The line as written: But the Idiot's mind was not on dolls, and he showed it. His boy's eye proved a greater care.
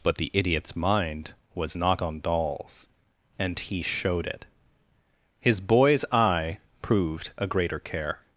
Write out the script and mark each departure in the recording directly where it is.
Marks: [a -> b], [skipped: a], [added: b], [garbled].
But the Idiot's mind was not on dolls, and he showed it. His boy's eye proved a greater care.